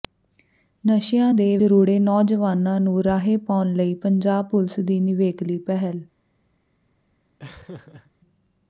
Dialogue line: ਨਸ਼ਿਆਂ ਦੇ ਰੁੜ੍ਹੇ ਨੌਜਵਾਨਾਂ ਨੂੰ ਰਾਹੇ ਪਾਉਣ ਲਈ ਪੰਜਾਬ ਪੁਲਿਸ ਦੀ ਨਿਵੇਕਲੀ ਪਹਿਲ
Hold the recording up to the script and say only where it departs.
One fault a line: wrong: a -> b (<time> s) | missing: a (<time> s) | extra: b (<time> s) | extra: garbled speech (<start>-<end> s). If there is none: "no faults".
no faults